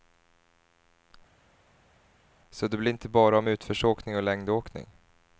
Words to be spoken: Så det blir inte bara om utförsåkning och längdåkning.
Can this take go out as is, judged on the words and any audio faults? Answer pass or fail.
pass